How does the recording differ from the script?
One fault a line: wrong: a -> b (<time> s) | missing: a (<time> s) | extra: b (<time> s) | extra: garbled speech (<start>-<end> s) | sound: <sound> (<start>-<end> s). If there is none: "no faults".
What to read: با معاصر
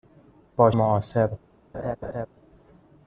sound: laugh (1.7-2.3 s)